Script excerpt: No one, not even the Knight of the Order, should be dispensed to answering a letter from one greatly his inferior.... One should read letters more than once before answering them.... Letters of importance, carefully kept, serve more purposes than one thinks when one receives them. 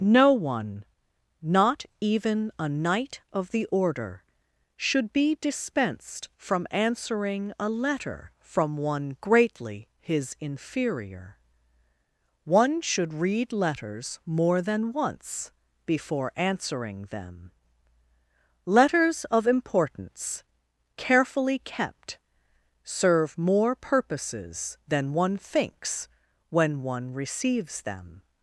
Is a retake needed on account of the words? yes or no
yes